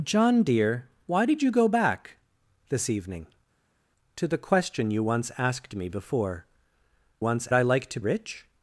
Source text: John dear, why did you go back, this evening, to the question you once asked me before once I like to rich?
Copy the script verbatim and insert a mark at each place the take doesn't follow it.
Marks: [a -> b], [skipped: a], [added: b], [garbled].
John dear, why did you go back, this evening, to the question you once asked me before once I like to rich?